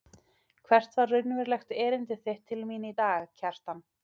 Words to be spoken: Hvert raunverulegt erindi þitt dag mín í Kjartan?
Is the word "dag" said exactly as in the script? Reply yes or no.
no